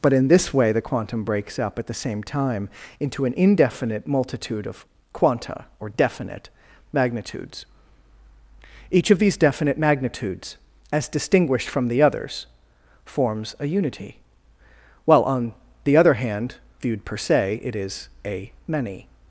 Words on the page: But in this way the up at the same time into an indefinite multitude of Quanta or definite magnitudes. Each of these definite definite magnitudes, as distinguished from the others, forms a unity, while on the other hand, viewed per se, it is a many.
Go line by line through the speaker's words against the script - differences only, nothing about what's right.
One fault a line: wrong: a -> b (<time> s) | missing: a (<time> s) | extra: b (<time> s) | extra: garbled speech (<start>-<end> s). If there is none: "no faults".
extra: quantum breaks (0.8 s)
missing: definite (9.8 s)